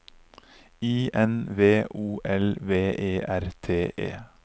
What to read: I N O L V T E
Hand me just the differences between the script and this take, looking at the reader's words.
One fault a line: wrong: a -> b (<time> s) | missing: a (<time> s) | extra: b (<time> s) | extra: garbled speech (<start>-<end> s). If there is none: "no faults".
extra: V (1.6 s)
extra: E R (3.0 s)